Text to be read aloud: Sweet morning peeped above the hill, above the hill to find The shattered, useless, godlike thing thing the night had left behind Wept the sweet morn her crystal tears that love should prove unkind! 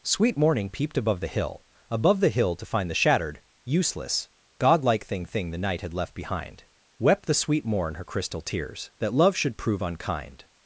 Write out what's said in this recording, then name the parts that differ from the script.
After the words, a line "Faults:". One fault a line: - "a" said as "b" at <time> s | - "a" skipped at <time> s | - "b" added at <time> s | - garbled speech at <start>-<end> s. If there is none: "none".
Sweet morning peeped above the hill, above the hill to find The shattered, useless, godlike thing thing the night had left behind Wept the sweet morn her crystal tears that love should prove unkind!
Faults:
none